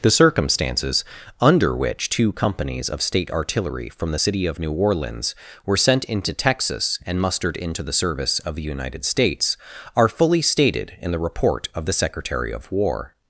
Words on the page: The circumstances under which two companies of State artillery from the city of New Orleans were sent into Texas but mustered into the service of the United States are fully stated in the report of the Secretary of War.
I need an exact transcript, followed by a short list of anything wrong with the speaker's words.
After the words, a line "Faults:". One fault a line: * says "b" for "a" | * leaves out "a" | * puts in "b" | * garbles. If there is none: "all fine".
The circumstances under which two companies of State artillery from the city of New Orleans were sent into Texas and mustered into the service of the United States are fully stated in the report of the Secretary of War.
Faults:
* says "and" for "but"